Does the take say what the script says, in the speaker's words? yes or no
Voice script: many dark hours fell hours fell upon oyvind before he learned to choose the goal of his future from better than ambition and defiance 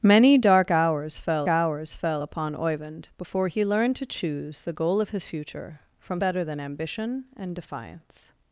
yes